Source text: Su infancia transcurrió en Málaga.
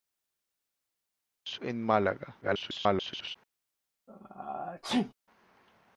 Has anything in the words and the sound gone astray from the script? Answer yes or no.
yes